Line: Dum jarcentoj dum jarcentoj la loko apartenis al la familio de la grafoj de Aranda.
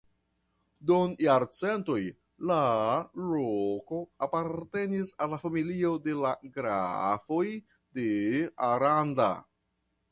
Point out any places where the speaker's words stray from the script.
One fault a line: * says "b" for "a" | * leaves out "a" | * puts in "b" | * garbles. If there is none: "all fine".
* leaves out "dum jarcentoj"